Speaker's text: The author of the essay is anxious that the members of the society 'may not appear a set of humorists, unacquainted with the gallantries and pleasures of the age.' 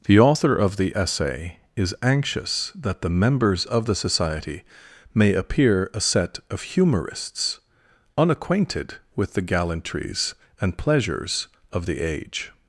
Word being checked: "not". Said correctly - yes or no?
no